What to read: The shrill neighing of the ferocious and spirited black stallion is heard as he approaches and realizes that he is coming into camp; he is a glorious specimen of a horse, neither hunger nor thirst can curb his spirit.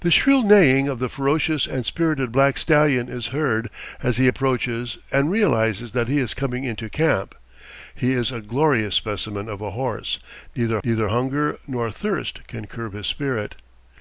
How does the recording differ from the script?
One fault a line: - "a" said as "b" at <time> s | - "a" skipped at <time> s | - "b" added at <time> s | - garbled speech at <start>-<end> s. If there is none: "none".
- "neither" added at 10.8 s